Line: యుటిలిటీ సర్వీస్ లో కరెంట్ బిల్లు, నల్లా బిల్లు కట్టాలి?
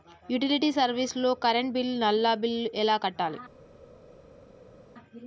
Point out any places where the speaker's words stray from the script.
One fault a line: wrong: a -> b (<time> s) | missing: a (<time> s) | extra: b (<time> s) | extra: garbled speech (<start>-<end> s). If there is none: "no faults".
extra: ఎలా (2.8 s)